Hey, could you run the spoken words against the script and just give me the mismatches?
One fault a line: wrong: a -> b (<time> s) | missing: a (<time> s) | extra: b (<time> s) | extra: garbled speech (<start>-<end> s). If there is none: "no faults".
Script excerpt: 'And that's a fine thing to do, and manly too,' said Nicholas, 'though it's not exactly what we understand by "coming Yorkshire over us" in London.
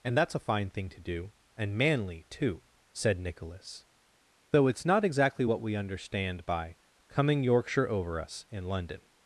no faults